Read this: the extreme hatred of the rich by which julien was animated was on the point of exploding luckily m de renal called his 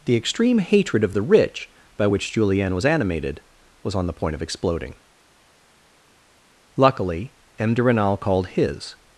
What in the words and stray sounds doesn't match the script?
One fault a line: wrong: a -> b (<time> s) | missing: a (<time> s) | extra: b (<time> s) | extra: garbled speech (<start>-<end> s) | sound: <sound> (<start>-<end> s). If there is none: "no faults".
no faults